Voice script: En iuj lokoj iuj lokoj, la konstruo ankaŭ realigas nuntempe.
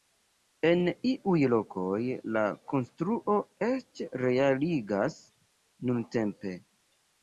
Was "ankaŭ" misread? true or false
true